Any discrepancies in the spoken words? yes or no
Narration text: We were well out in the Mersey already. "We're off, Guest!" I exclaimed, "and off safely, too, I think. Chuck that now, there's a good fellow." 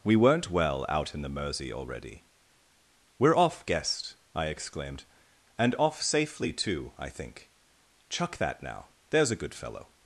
yes